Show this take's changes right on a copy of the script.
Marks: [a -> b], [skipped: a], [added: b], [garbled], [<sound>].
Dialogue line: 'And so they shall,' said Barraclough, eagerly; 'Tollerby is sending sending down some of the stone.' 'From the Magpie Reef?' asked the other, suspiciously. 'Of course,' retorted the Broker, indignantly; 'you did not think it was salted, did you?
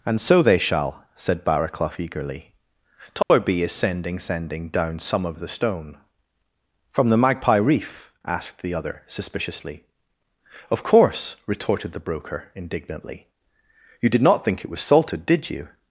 'And so they shall,' said Barraclough, eagerly; 'Tollerby [dropout] is sending sending down some of the stone.' 'From the Magpie Reef?' asked the other, suspiciously. 'Of course,' retorted the Broker, indignantly; 'you did not think it was salted, did you?